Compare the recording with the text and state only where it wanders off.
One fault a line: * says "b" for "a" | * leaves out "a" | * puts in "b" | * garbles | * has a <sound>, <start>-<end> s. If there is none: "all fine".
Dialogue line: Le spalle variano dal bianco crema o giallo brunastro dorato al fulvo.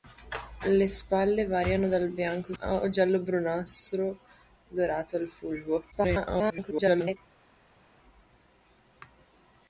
* leaves out "crema"
* garbles